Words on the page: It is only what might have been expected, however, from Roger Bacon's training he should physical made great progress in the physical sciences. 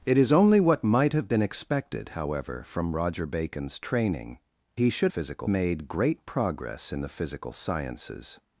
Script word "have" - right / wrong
right